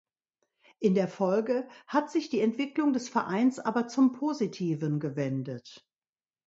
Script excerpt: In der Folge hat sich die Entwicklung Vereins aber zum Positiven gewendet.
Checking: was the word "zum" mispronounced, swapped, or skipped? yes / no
no